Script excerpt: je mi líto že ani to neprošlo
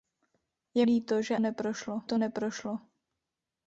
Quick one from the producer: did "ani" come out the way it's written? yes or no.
no